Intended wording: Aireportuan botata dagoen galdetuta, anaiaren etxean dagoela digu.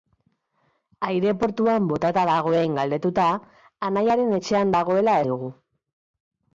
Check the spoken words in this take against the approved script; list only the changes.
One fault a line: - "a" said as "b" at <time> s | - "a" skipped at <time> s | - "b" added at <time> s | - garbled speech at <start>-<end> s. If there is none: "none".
none